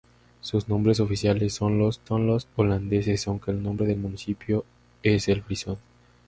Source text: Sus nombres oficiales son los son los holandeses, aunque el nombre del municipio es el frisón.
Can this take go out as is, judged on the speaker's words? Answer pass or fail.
pass